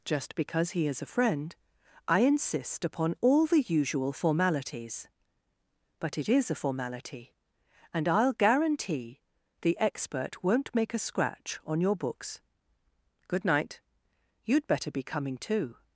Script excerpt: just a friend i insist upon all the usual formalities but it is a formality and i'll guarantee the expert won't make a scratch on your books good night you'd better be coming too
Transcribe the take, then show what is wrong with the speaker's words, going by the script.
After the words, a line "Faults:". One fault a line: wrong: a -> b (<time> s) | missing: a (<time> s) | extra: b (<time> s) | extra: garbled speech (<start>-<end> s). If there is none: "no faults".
just because he is a friend i insist upon all the usual formalities but it is a formality and i'll guarantee the expert won't make a scratch on your books good night you'd better be coming too
Faults:
extra: because he is (0.3 s)